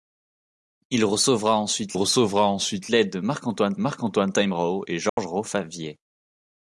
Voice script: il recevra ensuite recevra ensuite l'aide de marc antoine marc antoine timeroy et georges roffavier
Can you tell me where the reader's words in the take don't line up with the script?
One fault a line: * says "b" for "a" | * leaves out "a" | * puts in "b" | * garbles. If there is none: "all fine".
all fine